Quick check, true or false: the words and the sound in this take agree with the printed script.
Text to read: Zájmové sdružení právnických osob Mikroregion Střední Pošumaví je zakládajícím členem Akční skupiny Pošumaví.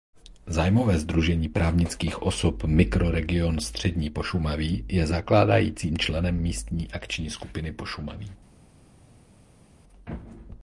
false